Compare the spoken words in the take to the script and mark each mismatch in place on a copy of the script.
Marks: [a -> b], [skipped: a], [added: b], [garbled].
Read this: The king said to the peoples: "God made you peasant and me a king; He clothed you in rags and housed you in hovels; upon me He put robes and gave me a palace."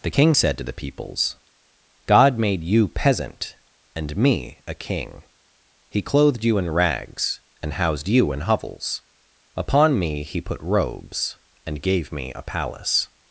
The king said to the peoples: "God made you peasant and me a king; He clothed you in rags and housed you in hovels; upon me He put robes and gave me a palace."